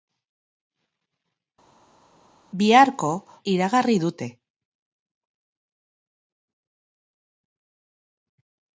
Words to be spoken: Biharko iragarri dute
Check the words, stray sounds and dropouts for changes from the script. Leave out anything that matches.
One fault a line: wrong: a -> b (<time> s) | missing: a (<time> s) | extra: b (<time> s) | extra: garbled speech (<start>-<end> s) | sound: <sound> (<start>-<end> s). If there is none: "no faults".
no faults